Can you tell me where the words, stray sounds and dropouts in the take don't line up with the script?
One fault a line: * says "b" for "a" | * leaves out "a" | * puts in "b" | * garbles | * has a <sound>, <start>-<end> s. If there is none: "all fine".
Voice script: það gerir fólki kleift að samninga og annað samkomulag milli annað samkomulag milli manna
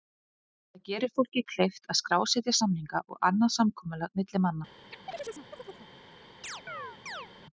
* puts in "skrásetja"
* leaves out "annað samkomulag milli"
* has a chirp, 4.9-5.9 s
* has a chirp, 6.4-7.3 s